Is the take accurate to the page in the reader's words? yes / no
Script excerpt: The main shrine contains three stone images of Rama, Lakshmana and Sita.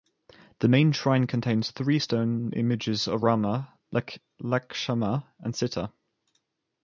yes